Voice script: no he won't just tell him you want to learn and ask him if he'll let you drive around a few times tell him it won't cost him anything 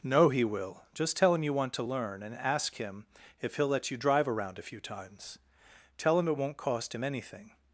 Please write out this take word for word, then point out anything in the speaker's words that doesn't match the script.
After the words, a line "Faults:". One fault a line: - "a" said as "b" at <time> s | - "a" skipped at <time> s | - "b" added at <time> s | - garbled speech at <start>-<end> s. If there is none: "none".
no he will just tell him you want to learn and ask him if he'll let you drive around a few times tell him it won't cost him anything
Faults:
- "won't" said as "will" at 0.4 s